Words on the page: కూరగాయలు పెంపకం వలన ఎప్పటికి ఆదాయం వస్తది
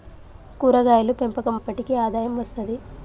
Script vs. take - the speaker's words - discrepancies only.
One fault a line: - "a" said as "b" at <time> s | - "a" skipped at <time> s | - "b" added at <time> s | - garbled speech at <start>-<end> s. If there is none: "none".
- "వలన" skipped at 1.6 s